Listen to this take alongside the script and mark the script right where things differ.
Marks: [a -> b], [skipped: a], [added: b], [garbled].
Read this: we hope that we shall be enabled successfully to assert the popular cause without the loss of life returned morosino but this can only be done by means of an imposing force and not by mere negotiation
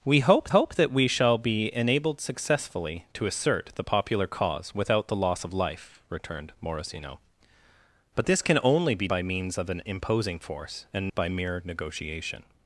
we hope [added: hope] that we shall be enabled successfully to assert the popular cause without the loss of life returned morosino but this can only be [skipped: done] by means of an imposing force and [skipped: not] by mere negotiation